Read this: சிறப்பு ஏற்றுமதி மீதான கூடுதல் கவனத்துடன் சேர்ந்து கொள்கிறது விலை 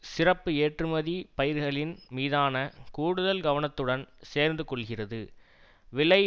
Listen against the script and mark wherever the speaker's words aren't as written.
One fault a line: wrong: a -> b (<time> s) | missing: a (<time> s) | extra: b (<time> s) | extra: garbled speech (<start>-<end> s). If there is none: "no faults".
extra: பயிர்களின் (1.4 s)